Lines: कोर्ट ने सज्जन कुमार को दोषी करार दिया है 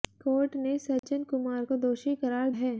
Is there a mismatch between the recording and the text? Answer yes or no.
yes